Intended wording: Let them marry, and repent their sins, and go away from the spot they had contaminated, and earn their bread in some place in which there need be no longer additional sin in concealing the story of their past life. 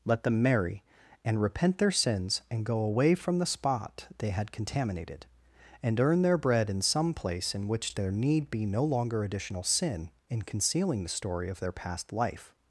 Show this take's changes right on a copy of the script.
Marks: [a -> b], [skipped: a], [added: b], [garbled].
Let them marry, and repent their sins, and go away from the spot they had contaminated, and earn their bread in some place in which there need be no longer additional sin in concealing the story of their past life.